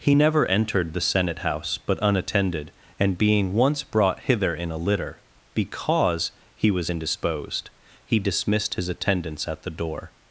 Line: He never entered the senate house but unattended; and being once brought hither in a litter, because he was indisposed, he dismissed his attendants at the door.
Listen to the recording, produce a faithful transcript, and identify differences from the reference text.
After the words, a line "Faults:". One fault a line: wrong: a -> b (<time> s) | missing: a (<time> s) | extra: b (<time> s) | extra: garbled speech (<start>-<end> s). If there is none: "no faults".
He never entered the senate house but unattended; and being once brought hither in a litter, because he was indisposed, he dismissed his attendants at the door.
Faults:
no faults